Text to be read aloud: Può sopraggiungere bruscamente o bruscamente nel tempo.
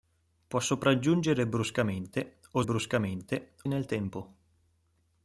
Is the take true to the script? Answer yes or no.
yes